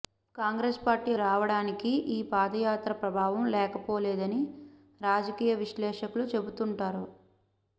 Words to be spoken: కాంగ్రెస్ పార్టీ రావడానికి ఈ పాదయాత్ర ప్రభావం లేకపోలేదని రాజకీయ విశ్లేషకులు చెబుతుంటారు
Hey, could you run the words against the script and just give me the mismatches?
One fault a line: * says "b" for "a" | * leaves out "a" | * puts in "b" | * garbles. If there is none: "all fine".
all fine